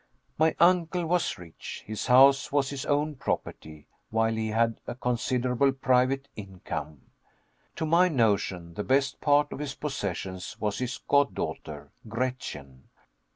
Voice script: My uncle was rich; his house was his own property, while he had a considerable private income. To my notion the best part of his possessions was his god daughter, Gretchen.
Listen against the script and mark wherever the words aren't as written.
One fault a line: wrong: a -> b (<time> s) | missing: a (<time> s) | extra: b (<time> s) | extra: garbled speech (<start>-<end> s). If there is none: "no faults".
no faults